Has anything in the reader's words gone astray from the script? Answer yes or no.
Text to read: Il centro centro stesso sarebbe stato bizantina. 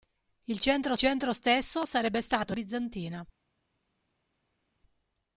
no